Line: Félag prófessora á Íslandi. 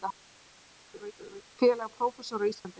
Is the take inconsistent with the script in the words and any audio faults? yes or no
yes